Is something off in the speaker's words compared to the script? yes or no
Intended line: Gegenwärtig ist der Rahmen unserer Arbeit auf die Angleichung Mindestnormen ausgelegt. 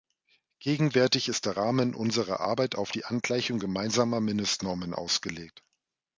yes